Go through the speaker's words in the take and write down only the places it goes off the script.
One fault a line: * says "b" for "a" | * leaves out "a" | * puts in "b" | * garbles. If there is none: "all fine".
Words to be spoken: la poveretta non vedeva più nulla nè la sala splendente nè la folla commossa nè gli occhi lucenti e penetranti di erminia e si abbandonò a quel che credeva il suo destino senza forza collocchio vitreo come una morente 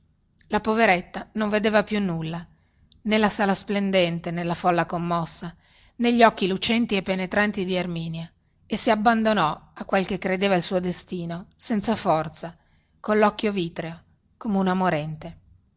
all fine